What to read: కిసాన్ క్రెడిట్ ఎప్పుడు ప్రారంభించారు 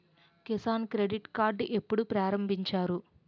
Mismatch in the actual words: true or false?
true